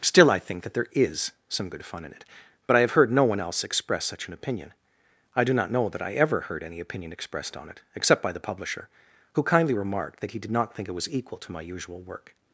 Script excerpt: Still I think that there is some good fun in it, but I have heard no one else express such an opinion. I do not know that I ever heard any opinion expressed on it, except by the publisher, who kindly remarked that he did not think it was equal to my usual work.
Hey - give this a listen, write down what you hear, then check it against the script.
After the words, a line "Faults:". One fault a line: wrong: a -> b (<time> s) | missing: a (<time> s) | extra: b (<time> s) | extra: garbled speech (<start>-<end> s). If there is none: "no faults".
Still I think that there is some good fun in it, but I have heard no one else express such an opinion. I do not know that I ever heard any opinion expressed on it, except by the publisher, who kindly remarked that he did not think it was equal to my usual work.
Faults:
no faults